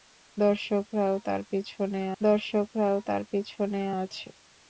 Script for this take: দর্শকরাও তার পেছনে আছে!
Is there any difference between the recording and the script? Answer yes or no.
yes